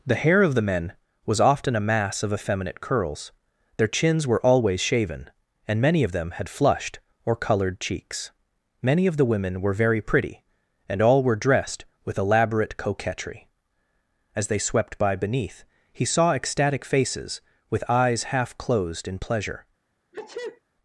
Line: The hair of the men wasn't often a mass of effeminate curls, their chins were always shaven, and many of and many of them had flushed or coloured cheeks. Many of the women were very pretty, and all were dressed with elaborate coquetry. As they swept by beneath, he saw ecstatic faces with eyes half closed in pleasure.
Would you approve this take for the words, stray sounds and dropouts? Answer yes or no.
no